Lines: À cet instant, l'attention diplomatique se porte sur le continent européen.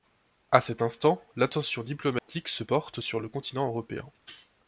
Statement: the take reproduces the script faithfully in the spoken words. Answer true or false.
true